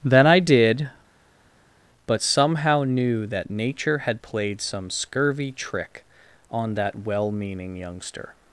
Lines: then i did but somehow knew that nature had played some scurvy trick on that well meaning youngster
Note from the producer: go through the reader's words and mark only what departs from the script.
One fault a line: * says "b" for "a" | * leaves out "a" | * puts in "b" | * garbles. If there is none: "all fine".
all fine